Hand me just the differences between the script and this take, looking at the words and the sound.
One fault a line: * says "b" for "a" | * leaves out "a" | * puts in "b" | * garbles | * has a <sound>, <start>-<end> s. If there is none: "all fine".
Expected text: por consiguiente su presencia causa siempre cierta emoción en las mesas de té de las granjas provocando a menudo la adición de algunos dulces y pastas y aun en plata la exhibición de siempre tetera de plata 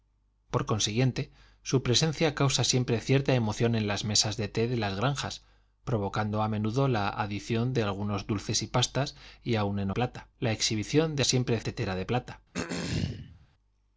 * has a throat clearing, 12.5-13.5 s